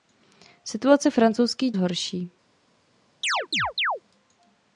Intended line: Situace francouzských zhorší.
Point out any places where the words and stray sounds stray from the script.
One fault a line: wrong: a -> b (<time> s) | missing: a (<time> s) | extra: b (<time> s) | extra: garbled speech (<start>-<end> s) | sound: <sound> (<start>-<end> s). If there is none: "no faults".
sound: chirp (3.2-4.0 s)